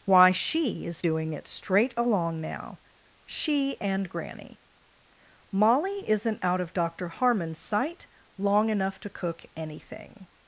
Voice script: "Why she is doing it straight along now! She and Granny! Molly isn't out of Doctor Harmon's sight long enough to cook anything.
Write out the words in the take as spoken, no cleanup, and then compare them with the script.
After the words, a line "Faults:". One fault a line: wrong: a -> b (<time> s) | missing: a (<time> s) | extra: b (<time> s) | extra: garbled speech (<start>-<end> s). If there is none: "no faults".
"Why she is doing it straight along now! She and Granny! Molly isn't out of Doctor Harmon's sight long enough to cook anything.
Faults:
no faults